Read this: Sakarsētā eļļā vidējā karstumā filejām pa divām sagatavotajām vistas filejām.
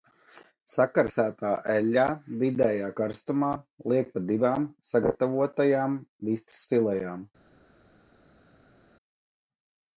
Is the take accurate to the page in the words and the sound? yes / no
no